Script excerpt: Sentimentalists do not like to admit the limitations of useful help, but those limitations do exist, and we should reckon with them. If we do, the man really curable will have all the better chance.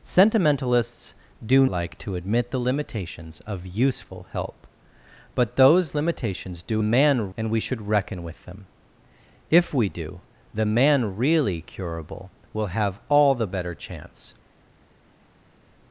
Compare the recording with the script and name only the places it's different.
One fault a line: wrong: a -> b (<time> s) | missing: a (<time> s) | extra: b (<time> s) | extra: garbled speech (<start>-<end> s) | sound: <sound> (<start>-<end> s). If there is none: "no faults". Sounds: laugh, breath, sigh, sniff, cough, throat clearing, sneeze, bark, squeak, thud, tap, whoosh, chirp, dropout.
missing: not (1.6 s)
wrong: exist -> man (6.8 s)